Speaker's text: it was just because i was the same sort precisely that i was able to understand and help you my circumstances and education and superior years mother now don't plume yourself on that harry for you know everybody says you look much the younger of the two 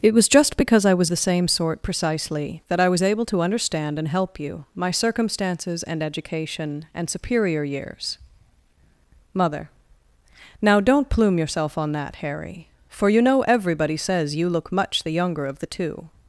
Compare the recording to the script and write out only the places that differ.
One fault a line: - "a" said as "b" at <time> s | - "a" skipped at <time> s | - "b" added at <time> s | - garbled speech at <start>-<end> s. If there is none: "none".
none